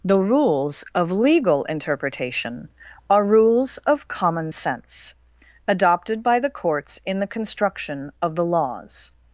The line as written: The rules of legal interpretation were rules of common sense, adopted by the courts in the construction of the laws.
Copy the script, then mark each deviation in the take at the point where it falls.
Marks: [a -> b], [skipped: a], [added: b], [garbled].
The rules of legal interpretation [were -> are] rules of common sense, adopted by the courts in the construction of the laws.